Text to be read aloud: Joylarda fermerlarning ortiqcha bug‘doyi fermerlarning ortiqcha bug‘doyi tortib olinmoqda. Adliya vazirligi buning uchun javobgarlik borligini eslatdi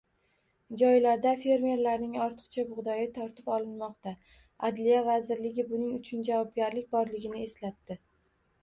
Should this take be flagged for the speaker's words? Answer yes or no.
yes